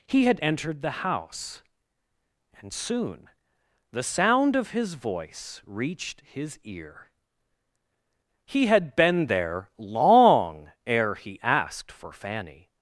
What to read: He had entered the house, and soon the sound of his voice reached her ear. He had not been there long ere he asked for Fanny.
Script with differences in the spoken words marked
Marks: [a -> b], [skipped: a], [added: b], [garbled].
He had entered the house, and soon the sound of his voice reached [her -> his] ear. He had [skipped: not] been there long ere he asked for Fanny.